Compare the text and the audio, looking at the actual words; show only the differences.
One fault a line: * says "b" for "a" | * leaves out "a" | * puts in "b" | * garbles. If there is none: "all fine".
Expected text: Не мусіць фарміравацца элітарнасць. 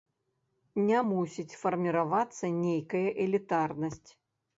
* puts in "нейкая"